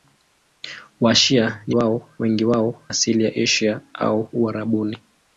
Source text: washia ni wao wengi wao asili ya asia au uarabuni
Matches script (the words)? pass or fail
pass